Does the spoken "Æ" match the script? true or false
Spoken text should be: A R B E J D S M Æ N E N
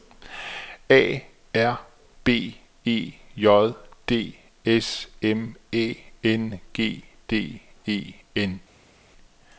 true